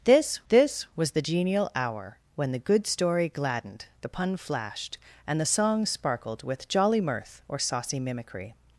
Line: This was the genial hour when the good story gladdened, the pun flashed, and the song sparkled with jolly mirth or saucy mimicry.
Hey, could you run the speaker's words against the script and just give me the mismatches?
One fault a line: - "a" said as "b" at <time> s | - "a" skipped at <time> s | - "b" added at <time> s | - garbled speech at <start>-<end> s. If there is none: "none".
- "this" added at 0.5 s